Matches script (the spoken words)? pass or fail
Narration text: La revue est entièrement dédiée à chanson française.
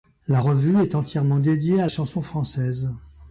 pass